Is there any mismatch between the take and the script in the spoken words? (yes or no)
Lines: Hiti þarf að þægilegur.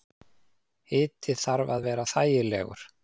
yes